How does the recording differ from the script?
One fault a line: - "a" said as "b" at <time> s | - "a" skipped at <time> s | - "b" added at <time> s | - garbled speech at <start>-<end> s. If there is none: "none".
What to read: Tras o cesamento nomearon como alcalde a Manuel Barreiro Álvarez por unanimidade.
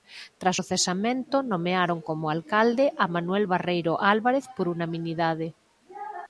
none